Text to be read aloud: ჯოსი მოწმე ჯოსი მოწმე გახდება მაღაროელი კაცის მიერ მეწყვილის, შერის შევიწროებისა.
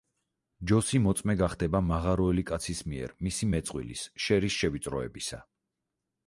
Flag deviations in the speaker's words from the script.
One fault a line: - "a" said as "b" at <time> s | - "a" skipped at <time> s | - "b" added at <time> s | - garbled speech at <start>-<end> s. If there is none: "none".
- "ჯოსი მოწმე" skipped at 1.4 s
- "მისი" added at 3.3 s